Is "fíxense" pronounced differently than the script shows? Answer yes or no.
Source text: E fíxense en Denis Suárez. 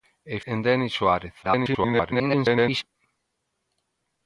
yes